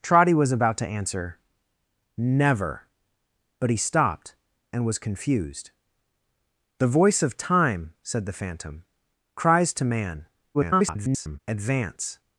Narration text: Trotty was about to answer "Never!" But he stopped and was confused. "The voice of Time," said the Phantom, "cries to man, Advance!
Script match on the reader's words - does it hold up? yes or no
no